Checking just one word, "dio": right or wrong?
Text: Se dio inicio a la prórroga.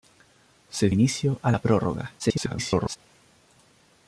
wrong